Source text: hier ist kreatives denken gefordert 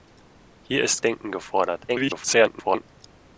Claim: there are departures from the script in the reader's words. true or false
true